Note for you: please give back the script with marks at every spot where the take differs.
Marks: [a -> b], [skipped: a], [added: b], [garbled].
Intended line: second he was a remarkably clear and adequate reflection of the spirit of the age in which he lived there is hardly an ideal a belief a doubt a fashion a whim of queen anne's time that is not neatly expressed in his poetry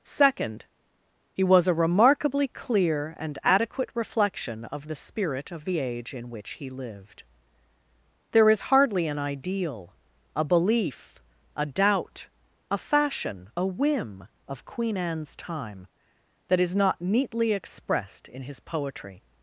second he was a remarkably clear and adequate reflection of the spirit of the age in which he lived there is hardly an ideal a belief a doubt a fashion a whim of queen anne's time that is not neatly expressed in his poetry